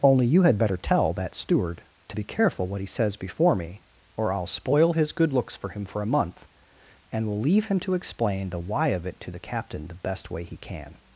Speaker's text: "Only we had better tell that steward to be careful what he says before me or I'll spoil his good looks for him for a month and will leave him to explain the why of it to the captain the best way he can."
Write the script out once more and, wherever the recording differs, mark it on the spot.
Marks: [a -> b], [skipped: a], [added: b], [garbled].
"Only [we -> you] had better tell that steward to be careful what he says before me or I'll spoil his good looks for him for a month and will leave him to explain the why of it to the captain the best way he can."